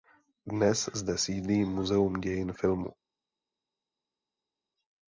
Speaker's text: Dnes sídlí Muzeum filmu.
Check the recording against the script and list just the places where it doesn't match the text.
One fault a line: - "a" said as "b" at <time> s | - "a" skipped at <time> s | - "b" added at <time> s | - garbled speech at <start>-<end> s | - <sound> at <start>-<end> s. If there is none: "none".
- "zde" added at 0.9 s
- "dějin" added at 2.1 s